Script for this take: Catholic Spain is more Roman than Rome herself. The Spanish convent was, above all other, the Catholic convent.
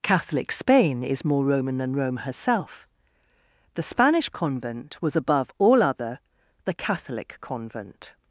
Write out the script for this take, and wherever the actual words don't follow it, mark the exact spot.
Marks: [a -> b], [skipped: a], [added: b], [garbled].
Catholic Spain is more Roman than Rome herself. The Spanish convent was, above all other, the Catholic convent.